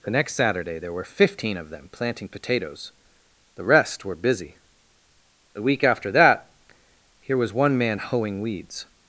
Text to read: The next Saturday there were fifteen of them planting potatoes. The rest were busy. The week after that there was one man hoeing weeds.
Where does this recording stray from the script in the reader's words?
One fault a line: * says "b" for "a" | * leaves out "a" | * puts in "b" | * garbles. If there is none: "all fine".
* says "here" for "there"